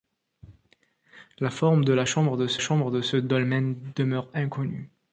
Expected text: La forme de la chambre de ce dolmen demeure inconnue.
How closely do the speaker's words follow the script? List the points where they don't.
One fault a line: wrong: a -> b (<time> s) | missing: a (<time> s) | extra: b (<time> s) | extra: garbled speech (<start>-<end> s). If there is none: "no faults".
extra: chambre de ce (2.6 s)